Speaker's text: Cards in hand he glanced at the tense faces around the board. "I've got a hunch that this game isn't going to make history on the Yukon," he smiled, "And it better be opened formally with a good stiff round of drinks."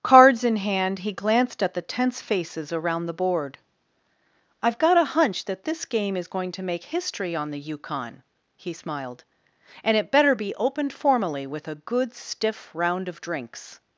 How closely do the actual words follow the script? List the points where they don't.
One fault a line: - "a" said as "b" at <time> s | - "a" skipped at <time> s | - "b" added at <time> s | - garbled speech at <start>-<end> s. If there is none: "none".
- "isn't" said as "is" at 6.1 s